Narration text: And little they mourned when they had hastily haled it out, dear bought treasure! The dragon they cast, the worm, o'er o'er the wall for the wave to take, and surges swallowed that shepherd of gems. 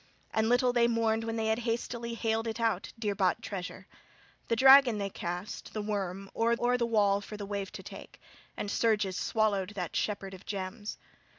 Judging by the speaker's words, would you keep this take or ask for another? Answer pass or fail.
pass